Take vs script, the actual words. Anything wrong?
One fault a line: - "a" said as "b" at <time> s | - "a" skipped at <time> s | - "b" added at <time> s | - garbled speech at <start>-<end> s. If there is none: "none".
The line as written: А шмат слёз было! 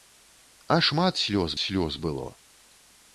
- "слёз" added at 1.6 s